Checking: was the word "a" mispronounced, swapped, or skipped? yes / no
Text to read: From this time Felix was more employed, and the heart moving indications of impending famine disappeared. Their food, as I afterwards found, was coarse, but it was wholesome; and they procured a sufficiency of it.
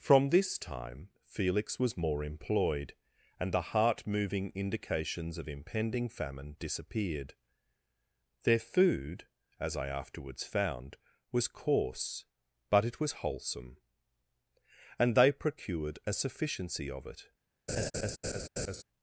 no